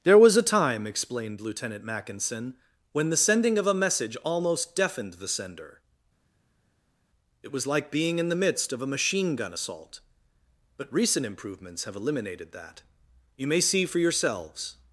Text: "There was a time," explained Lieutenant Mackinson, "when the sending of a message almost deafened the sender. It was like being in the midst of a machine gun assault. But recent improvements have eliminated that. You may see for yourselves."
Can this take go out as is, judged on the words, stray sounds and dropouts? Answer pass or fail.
pass